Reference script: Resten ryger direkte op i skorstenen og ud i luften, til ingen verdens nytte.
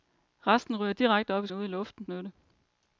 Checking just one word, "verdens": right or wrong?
wrong